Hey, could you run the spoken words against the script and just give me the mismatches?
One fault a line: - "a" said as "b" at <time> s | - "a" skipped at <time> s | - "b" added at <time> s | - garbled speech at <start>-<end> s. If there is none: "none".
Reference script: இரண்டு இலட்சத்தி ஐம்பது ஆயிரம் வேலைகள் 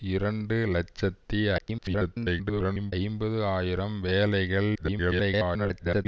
- garbled speech at 1.6-2.9 s
- garbled speech at 4.7-6.1 s